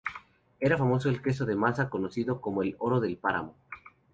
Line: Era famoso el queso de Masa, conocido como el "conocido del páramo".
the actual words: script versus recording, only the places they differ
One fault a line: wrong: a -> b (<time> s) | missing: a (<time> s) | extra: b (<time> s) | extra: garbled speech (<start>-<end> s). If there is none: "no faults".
wrong: conocido -> oro (2.8 s)